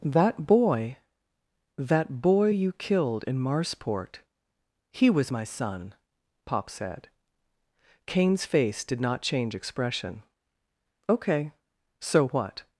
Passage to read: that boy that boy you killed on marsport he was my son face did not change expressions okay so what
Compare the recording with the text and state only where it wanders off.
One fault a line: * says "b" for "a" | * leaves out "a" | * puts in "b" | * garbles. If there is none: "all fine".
* says "in" for "on"
* puts in "pop said kane's"
* says "expression" for "expressions"